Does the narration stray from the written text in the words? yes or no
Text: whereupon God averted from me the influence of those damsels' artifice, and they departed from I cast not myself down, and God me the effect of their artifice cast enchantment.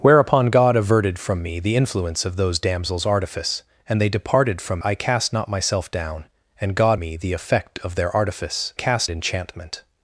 no